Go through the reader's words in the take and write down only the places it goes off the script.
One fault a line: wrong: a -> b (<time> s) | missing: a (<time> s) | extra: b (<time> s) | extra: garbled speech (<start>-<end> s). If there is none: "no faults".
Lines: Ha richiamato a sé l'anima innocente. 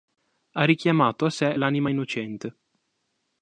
no faults